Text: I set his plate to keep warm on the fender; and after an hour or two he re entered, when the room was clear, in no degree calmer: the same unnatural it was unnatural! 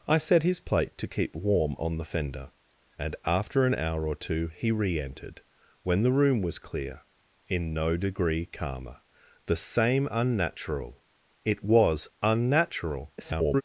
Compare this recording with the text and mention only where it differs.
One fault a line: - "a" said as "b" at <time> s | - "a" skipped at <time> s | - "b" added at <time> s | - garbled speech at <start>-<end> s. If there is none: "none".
- garbled speech at 13.2-13.6 s